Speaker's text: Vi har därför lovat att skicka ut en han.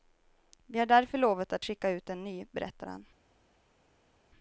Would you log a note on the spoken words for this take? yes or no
yes